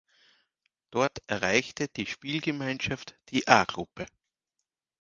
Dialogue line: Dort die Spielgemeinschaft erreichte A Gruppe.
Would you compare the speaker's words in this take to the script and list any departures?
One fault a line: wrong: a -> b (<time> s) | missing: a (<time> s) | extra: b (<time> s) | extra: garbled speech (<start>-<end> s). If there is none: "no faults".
extra: erreichte (1.3 s)
wrong: erreichte -> die (3.3 s)